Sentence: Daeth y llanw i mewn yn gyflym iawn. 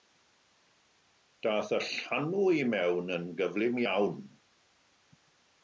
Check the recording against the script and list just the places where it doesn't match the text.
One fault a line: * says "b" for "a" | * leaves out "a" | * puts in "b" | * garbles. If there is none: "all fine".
all fine